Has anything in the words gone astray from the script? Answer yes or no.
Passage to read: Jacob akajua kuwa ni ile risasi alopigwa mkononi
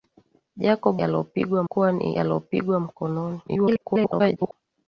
yes